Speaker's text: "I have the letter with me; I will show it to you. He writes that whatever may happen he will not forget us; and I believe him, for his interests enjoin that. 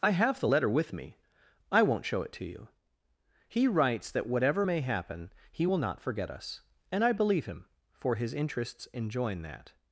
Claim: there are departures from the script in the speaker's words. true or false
true